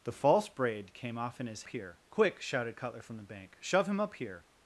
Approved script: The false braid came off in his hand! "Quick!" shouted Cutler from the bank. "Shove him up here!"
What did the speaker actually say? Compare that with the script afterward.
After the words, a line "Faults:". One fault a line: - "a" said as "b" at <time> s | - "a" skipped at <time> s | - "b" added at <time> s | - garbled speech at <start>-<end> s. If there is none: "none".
The false braid came off in his here! "Quick!" shouted Cutler from the bank. "Shove him up here!"
Faults:
- "hand" said as "here" at 1.7 s